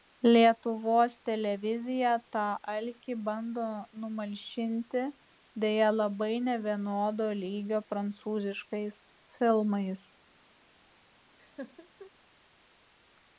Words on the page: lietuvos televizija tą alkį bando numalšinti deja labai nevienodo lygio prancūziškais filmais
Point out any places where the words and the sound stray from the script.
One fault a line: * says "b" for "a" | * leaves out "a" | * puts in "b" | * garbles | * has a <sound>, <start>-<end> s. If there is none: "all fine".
* has a laugh, 11.4-12.1 s